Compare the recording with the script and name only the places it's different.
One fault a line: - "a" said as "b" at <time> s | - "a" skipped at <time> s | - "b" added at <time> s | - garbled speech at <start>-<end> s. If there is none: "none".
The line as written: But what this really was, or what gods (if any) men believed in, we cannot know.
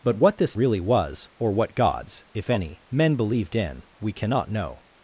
none